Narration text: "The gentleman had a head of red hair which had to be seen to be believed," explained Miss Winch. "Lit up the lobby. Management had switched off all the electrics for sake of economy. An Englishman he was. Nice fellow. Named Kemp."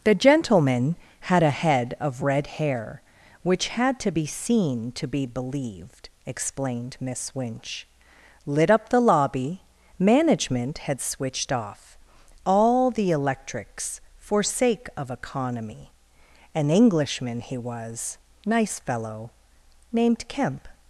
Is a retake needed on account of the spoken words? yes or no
no